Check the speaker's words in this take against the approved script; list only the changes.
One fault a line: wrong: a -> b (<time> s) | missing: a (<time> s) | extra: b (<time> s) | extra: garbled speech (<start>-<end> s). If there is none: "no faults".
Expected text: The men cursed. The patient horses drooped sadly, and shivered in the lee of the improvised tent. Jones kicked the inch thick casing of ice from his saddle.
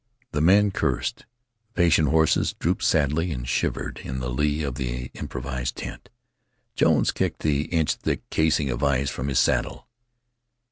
no faults